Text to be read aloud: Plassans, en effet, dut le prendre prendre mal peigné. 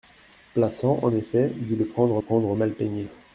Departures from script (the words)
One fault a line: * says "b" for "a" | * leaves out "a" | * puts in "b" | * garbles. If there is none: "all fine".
all fine